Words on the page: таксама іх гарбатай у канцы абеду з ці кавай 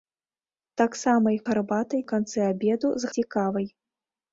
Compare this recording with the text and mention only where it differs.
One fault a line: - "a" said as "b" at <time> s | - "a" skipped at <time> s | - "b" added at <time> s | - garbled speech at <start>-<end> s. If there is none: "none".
none